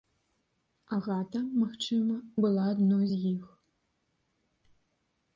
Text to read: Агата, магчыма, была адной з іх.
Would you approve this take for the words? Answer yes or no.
yes